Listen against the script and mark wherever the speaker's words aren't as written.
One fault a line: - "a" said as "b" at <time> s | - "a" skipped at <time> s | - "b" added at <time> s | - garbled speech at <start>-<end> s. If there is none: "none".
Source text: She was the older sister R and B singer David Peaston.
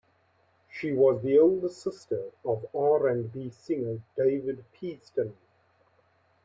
- "of" added at 2.4 s